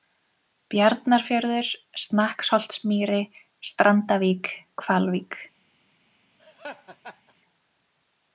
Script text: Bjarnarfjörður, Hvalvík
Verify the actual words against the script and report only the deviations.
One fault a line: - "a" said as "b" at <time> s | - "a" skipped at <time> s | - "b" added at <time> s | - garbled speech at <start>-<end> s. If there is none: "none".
- "Snakksholtsmýri Strandavík" added at 2.0 s